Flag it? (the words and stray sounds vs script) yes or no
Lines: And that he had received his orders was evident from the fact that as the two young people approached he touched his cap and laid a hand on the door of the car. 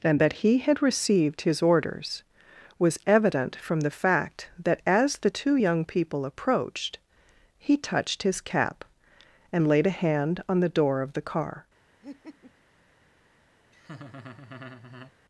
yes